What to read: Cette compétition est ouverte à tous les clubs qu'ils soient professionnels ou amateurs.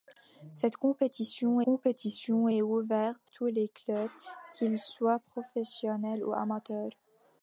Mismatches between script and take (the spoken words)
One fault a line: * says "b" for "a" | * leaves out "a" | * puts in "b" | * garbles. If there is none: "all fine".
* puts in "compétition"
* leaves out "à"